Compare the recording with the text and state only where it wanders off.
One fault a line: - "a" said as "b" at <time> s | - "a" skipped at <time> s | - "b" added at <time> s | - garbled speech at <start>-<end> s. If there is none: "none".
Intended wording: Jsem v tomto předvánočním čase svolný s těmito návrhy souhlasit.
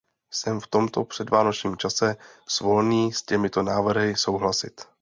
none